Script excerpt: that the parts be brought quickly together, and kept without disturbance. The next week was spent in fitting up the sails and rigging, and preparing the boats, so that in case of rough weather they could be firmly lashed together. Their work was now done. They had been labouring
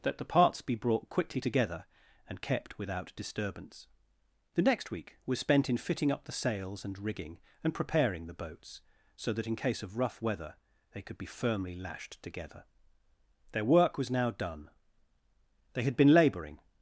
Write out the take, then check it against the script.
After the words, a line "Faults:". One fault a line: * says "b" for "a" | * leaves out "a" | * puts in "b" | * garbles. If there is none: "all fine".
that the parts be brought quickly together, and kept without disturbance. The next week was spent in fitting up the sails and rigging, and preparing the boats, so that in case of rough weather they could be firmly lashed together. Their work was now done. They had been labouring
Faults:
all fine